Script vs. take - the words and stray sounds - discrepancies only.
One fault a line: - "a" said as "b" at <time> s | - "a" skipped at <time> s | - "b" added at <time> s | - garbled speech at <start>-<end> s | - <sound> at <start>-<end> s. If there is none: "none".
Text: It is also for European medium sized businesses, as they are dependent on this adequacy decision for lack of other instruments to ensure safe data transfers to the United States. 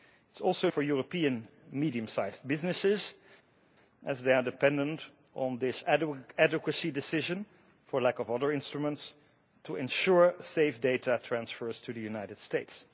none